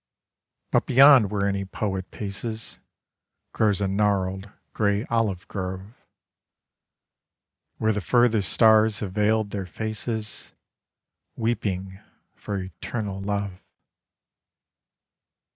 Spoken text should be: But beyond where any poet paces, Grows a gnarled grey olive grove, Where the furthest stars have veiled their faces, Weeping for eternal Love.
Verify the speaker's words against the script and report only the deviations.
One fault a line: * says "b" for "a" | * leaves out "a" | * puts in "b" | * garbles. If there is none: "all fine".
all fine